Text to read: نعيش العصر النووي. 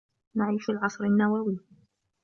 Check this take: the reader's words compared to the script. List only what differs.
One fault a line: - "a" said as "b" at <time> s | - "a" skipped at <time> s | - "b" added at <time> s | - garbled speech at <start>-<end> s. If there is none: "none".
none